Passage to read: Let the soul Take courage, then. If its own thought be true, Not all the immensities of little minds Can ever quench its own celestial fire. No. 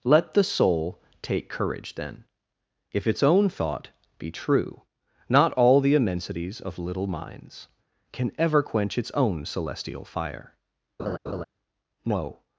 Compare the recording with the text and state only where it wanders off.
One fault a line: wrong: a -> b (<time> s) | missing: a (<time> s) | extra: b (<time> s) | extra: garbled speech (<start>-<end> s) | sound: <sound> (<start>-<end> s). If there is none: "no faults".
sound: laugh (11.0-11.4 s)